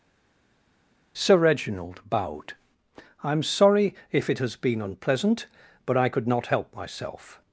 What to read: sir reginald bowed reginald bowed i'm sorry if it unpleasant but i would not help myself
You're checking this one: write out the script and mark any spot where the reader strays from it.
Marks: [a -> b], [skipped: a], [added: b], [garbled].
sir reginald bowed [skipped: reginald bowed] i'm sorry if it [added: has been] unpleasant but i [would -> could] not help myself